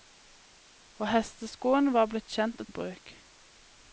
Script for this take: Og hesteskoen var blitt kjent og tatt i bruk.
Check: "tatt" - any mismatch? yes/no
yes